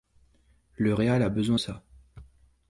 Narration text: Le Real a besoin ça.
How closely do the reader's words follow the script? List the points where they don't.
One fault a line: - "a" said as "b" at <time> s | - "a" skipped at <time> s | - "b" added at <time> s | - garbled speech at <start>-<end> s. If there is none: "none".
none